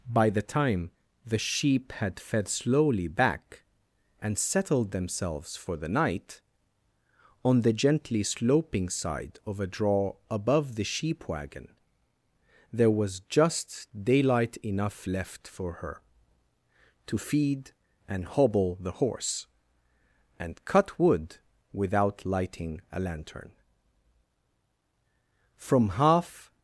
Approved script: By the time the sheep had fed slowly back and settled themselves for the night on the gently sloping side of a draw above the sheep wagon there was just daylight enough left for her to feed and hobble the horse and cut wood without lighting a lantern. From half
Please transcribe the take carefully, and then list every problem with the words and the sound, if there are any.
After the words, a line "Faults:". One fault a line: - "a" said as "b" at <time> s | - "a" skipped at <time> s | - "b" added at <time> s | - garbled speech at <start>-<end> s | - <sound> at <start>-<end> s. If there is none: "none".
By the time the sheep had fed slowly back and settled themselves for the night on the gently sloping side of a draw above the sheep wagon there was just daylight enough left for her to feed and hobble the horse and cut wood without lighting a lantern. From half
Faults:
none